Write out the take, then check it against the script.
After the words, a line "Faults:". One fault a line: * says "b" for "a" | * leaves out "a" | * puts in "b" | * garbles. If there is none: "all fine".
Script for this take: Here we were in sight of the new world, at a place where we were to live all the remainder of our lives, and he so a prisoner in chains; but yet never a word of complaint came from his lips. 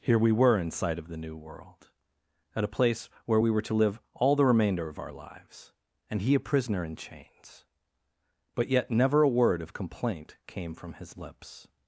Here we were in sight of the new world, at a place where we were to live all the remainder of our lives, and he a prisoner in chains; but yet never a word of complaint came from his lips.
Faults:
* leaves out "so"